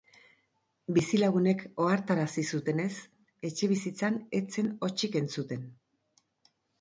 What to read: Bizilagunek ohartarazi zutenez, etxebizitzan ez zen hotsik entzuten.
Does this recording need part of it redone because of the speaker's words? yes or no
no